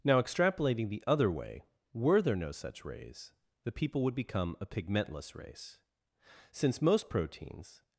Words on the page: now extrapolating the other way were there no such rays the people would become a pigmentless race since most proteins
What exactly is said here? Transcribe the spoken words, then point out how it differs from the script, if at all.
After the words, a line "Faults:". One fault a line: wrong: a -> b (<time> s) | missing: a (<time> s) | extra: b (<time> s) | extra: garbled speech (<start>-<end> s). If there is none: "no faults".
now extrapolating the other way were there no such rays the people would become a pigmentless race since most proteins
Faults:
no faults